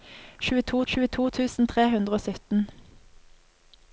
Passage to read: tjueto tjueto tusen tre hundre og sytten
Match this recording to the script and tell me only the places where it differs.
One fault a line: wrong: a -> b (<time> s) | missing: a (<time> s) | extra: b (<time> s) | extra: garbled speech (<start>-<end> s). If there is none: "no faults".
no faults